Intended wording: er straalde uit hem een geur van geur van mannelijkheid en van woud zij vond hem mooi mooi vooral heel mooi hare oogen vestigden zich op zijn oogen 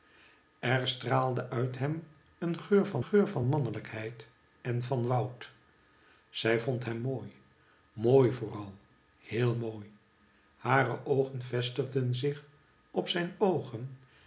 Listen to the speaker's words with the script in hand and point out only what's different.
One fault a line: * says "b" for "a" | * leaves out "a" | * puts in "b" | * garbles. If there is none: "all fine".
all fine